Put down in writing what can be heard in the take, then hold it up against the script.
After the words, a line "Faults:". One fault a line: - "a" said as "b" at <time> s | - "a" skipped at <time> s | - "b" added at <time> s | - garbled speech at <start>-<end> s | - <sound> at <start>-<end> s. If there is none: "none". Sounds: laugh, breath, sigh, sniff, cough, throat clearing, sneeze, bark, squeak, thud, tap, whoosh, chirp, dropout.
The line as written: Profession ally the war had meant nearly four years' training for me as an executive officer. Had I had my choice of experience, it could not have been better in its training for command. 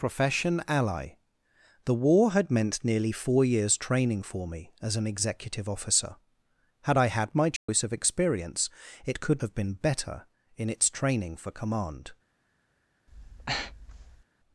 Profession ally the war had meant nearly four years' training for me as an executive officer. Had I had my choice of experience, it could have been better in its training for command.
Faults:
- dropout at 7.6-7.7 s
- "not" skipped at 9.4 s
- breath at 13.1-14.2 s